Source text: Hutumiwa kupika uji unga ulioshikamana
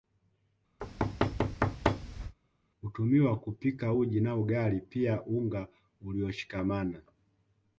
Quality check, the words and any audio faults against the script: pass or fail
fail